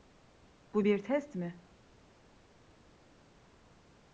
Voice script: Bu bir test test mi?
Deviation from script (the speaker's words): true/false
true